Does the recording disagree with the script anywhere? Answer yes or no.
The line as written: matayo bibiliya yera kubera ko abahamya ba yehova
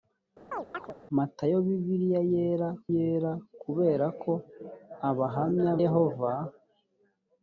yes